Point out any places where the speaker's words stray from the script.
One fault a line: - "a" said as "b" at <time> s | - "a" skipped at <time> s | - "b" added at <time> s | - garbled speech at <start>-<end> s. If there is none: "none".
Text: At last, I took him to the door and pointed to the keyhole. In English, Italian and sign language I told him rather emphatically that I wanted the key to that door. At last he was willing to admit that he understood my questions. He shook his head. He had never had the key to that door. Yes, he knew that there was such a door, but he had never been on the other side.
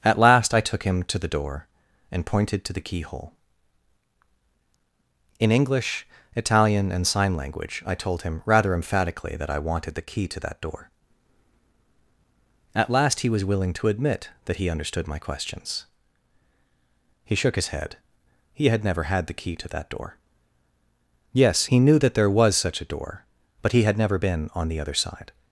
none